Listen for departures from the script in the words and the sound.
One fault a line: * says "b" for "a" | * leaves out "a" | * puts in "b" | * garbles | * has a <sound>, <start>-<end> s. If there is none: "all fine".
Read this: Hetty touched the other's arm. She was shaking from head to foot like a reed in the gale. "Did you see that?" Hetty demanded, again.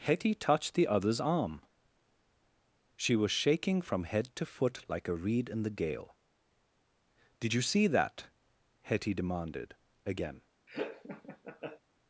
* has a laugh, 10.7-11.8 s